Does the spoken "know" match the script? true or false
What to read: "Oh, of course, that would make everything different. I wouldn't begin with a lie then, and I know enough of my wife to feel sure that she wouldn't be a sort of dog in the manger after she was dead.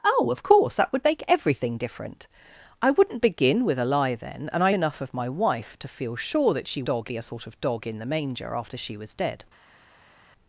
false